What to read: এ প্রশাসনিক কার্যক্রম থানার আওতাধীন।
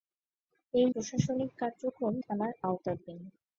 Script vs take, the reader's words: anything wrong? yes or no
no